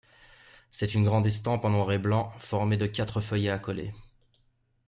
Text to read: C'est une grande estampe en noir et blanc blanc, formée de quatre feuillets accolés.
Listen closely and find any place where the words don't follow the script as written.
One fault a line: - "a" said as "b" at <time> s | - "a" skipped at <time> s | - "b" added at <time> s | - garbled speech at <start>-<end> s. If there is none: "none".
- "blanc" skipped at 2.3 s